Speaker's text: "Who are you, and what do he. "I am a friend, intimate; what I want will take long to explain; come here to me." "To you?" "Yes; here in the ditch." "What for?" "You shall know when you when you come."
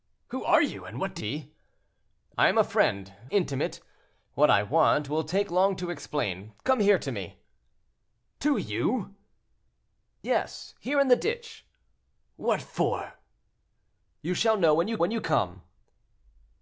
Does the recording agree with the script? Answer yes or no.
yes